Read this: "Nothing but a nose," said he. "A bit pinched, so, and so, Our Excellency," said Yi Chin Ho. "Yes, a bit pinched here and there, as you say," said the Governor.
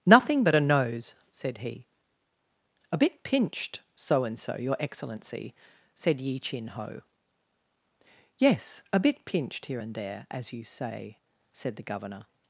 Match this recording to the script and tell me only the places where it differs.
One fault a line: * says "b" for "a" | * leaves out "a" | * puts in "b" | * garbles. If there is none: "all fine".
* says "Your" for "Our"